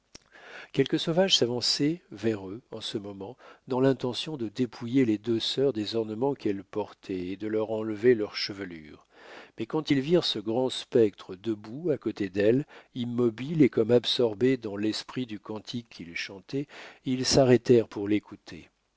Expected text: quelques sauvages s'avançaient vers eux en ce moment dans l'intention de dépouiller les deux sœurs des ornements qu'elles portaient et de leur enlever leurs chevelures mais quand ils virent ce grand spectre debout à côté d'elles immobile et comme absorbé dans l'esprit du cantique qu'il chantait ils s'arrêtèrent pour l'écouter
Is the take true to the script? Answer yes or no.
yes